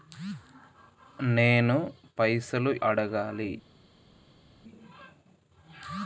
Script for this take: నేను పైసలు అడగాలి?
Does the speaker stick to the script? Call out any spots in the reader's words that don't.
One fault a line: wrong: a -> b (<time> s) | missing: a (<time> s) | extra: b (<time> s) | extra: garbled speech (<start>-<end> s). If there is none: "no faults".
no faults